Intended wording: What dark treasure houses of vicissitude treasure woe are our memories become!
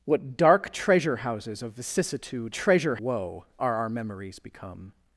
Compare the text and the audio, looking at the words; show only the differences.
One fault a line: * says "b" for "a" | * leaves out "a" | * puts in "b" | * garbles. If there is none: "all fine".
all fine